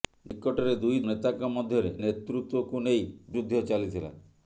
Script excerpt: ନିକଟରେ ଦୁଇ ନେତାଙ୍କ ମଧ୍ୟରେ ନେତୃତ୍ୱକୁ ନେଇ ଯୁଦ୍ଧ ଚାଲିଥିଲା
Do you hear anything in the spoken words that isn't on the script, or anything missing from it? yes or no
no